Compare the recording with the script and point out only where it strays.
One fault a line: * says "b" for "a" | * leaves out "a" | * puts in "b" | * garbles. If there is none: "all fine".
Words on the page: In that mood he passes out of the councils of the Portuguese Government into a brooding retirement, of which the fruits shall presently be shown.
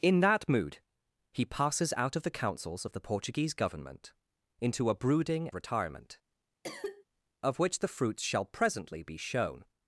all fine